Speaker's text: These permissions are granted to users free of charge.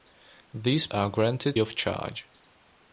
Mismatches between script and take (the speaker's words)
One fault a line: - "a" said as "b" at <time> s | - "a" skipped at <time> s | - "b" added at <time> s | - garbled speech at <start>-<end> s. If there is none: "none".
- "permissions" skipped at 0.9 s
- "to users free" skipped at 1.6 s